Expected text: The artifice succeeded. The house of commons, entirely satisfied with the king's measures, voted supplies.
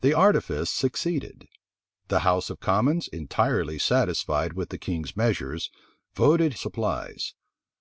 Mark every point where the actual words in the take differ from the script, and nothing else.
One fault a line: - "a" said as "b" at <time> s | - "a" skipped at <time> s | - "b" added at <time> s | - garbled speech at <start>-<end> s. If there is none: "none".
none